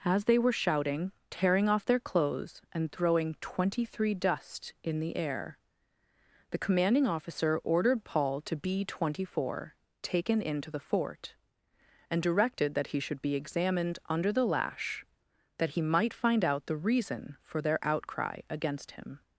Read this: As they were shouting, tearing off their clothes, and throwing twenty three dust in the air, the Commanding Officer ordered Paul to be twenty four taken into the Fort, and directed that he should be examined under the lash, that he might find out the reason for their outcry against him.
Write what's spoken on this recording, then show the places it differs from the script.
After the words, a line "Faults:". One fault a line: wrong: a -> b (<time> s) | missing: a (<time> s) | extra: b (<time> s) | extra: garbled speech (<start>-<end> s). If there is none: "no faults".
As they were shouting, tearing off their clothes, and throwing twenty three dust in the air, the Commanding Officer ordered Paul to be twenty four taken into the Fort, and directed that he should be examined under the lash, that he might find out the reason for their outcry against him.
Faults:
no faults